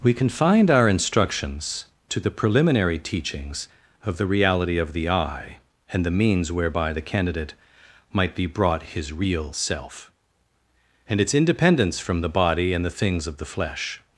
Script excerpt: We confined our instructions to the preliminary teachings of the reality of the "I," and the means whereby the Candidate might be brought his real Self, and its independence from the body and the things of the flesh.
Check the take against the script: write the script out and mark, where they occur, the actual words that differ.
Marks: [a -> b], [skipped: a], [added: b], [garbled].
We confined our instructions to the preliminary teachings of the reality of the "I," and the means whereby the Candidate might be brought his real Self, and its independence from the body and the things of the flesh.